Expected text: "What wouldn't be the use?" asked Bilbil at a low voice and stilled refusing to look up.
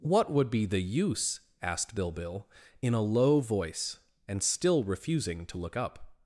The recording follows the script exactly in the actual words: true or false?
false